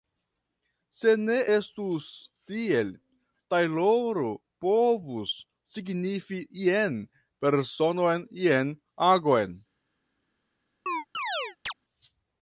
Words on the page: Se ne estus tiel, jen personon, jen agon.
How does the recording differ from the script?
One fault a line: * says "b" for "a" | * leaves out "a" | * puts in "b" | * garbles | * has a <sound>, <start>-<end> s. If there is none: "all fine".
* puts in "tajloro povus signifi"
* has a chirp, 10.9-11.7 s